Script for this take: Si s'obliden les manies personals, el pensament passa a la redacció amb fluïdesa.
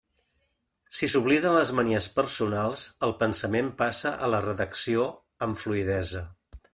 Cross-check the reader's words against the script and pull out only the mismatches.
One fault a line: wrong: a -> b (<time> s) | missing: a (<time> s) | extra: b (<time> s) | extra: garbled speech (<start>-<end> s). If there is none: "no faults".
no faults